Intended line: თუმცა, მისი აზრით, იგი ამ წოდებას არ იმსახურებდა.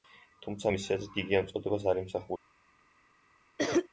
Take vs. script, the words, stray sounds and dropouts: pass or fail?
fail